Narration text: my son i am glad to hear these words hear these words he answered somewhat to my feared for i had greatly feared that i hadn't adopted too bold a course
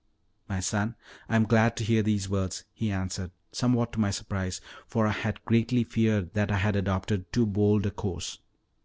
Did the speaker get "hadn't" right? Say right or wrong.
wrong